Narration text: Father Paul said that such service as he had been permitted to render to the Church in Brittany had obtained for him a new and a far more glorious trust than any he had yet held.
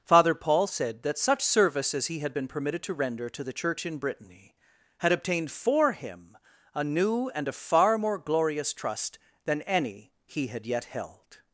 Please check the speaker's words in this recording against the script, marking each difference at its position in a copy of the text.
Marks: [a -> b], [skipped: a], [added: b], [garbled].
Father Paul said that such service as he had been permitted to render to the Church in Brittany had obtained for him a new and a far more glorious trust than any he had yet held.